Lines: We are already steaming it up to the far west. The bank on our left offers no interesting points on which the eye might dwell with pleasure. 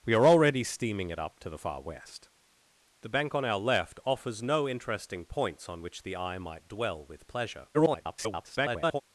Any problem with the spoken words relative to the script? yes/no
yes